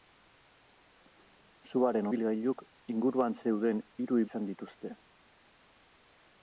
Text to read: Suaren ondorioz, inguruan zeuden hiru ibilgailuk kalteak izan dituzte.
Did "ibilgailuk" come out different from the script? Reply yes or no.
yes